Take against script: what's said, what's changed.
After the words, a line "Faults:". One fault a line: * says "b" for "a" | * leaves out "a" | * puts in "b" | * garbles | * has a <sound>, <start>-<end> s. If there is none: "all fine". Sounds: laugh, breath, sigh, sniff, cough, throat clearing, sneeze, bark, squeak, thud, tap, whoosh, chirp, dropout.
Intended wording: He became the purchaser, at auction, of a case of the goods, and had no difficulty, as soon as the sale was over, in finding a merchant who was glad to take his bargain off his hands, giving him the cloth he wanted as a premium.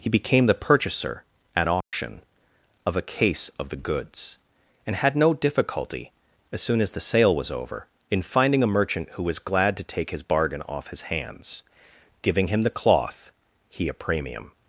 He became the purchaser, at auction, of a case of the goods, and had no difficulty, as soon as the sale was over, in finding a merchant who was glad to take his bargain off his hands, giving him the cloth he a premium.
Faults:
* has a dropout, 1.8-1.9 s
* leaves out "wanted as"